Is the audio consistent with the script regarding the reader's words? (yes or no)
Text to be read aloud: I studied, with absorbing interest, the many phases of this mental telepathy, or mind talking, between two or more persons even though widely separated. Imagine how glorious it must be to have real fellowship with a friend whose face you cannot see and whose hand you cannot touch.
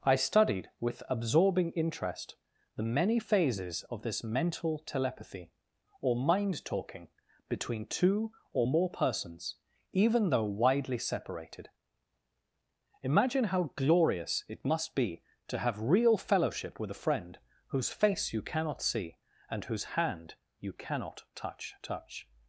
no